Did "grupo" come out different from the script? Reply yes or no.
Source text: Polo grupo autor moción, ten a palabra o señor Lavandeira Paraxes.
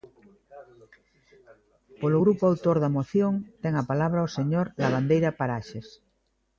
no